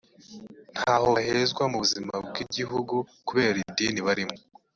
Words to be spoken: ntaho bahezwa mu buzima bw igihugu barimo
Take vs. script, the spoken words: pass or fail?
fail